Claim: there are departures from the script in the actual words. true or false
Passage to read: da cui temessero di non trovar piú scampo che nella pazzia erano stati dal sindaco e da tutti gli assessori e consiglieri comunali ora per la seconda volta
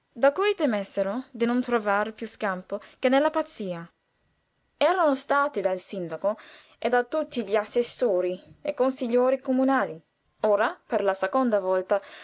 false